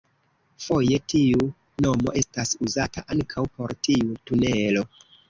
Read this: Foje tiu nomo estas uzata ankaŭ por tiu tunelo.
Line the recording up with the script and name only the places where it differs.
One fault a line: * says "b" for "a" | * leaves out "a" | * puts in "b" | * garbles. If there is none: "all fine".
all fine